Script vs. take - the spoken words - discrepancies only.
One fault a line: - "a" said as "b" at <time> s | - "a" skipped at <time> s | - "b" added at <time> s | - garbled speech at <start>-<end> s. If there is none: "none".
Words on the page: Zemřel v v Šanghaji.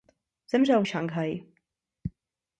none